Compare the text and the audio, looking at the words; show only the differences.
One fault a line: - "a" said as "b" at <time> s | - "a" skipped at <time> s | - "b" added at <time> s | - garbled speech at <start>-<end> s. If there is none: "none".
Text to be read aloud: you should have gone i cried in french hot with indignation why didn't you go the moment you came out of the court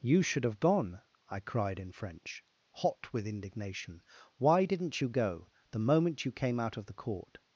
none